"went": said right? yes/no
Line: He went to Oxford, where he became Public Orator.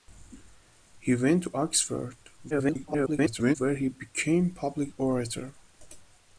yes